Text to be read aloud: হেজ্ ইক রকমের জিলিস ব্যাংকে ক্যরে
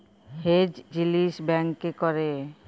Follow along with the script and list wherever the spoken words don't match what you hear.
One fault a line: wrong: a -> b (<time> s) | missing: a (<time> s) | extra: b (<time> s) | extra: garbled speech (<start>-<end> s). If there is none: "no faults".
missing: ইক রকমের (0.7 s)